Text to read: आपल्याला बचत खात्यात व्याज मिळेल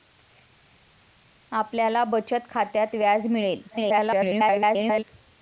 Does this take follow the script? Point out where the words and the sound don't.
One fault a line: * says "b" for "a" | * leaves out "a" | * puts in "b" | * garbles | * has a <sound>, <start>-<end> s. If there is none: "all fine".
* garbles